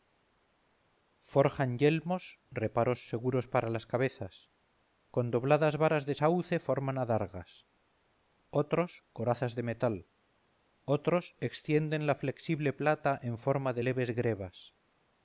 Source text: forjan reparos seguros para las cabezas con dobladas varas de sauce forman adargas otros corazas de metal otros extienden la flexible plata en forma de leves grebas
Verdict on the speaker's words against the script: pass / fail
fail